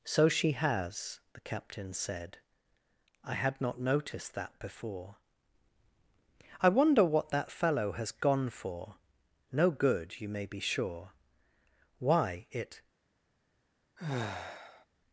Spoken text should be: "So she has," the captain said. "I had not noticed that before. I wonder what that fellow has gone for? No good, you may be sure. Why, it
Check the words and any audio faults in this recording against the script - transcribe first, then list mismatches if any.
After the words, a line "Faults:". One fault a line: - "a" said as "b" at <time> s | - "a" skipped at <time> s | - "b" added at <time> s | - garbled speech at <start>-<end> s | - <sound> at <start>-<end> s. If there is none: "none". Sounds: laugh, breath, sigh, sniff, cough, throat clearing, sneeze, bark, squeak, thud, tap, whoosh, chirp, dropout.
"So she has," the captain said. "I had not noticed that before. I wonder what that fellow has gone for? No good, you may be sure. Why, it
Faults:
- sigh at 14.0-14.9 s